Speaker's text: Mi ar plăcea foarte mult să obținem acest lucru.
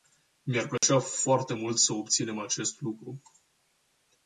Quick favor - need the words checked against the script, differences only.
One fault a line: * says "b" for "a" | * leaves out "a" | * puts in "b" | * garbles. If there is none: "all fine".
all fine